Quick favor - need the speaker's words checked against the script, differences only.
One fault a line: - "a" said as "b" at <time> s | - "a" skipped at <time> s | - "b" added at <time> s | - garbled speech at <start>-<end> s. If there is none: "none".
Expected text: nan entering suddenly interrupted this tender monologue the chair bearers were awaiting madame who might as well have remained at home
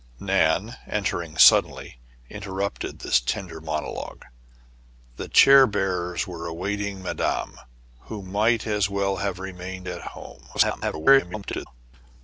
- garbled speech at 10.5-11.7 s